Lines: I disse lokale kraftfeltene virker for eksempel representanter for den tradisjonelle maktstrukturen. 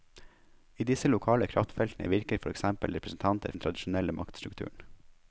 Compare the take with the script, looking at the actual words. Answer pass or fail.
fail